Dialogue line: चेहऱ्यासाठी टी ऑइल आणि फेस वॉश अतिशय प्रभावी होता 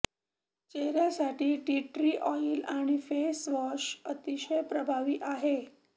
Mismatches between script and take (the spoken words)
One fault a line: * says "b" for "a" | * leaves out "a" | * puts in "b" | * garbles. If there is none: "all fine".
* puts in "ट्री"
* says "आहे" for "होता"